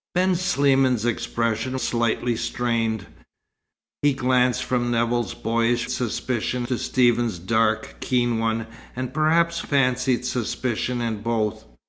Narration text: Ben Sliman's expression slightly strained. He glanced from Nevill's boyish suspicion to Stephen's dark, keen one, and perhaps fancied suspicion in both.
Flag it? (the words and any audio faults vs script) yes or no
no